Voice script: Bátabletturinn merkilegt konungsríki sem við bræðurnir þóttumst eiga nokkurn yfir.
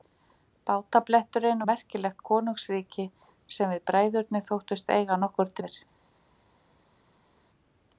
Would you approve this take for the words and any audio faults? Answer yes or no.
yes